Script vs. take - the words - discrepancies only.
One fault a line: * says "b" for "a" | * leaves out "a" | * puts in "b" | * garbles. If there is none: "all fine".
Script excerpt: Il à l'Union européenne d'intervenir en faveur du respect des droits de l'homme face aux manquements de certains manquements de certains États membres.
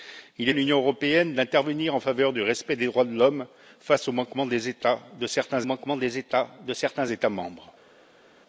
all fine